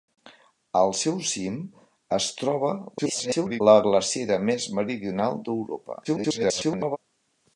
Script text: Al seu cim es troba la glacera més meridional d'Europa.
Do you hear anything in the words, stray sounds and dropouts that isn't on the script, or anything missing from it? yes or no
yes